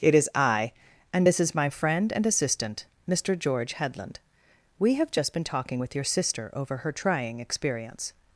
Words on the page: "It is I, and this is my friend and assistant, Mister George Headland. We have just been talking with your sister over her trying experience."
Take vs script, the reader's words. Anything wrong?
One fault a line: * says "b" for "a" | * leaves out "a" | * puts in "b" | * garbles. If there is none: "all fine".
all fine